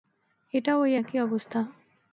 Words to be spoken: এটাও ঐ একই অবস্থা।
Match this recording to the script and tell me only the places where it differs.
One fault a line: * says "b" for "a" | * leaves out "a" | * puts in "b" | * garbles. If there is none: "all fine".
all fine